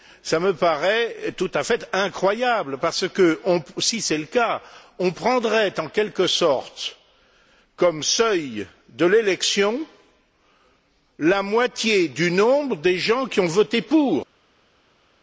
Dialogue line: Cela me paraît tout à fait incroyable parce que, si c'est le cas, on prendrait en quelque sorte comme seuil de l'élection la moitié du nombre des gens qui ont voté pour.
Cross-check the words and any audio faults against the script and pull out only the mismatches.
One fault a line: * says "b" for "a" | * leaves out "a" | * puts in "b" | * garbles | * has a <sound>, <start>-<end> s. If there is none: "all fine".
all fine